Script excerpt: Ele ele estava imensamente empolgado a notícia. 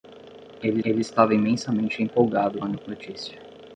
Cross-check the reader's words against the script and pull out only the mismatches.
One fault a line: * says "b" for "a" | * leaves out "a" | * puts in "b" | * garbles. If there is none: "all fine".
all fine